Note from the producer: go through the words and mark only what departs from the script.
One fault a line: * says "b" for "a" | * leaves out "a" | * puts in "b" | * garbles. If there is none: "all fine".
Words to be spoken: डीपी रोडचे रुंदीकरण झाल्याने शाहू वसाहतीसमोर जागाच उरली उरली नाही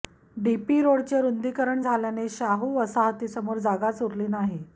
* leaves out "उरली"